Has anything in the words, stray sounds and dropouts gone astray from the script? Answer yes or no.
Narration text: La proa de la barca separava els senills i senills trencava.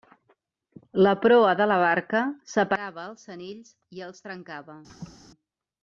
yes